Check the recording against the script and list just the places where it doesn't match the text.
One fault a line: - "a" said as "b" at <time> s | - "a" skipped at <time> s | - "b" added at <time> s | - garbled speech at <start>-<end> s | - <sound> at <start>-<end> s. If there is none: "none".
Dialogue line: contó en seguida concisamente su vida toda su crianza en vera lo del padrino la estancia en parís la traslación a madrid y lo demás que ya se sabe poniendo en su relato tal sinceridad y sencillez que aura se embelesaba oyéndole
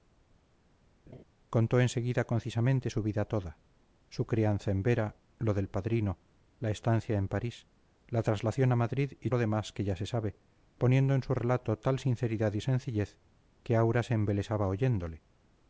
- laugh at 1.1-1.2 s